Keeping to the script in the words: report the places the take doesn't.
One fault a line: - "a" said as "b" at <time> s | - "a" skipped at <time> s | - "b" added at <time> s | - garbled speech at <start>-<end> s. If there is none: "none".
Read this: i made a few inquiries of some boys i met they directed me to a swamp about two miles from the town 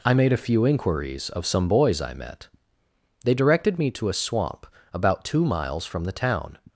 none